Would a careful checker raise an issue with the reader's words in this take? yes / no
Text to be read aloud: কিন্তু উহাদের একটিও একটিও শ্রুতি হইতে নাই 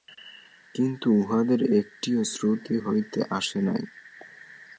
yes